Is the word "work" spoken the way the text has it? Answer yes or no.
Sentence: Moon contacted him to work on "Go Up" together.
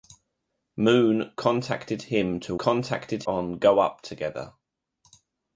no